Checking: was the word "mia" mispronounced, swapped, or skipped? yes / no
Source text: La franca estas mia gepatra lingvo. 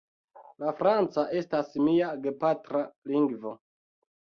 no